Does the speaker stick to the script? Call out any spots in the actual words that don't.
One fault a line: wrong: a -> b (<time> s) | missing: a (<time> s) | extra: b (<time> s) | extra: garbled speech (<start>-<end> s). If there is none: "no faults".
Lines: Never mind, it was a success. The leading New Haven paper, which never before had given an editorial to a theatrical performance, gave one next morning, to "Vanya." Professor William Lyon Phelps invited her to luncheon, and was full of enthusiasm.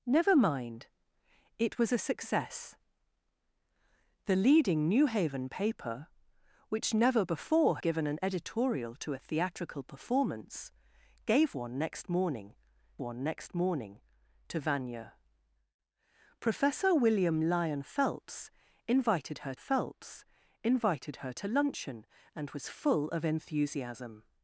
missing: had (7.8 s)
extra: one next morning (13.0 s)
extra: Phelps invited her (19.5 s)